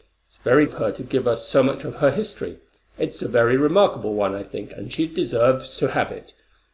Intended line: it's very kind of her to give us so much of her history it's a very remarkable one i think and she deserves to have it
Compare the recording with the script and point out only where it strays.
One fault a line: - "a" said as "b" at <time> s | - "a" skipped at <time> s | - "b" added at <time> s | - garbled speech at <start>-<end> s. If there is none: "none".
- "kind" skipped at 0.7 s